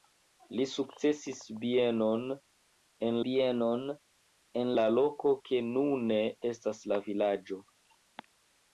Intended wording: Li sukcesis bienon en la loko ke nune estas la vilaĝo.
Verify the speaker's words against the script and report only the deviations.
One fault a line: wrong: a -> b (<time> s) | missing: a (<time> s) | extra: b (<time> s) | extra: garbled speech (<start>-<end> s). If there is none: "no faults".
extra: bienon en (3.3 s)